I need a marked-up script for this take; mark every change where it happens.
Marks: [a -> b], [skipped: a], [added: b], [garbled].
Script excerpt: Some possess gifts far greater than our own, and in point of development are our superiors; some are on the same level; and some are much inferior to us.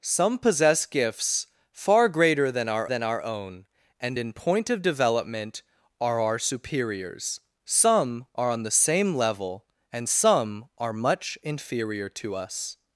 Some possess gifts far greater than our [added: than our] own, and in point of development are our superiors; some are on the same level; and some are much inferior to us.